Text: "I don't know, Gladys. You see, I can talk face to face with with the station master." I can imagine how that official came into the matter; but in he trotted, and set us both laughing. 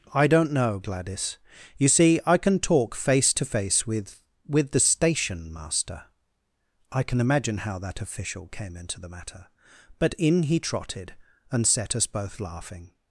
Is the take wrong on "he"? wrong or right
right